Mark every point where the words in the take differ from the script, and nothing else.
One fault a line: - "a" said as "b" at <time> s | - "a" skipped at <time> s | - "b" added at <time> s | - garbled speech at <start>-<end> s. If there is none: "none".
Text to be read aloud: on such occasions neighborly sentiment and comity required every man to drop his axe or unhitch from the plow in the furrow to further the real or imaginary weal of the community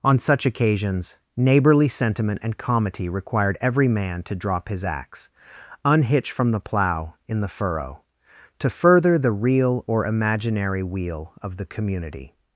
- "or" skipped at 5.3 s